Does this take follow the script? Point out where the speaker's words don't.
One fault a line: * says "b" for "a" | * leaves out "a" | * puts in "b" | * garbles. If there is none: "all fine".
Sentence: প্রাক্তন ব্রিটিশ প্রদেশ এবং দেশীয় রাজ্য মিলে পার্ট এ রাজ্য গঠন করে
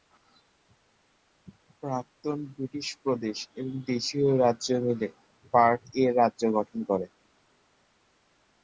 all fine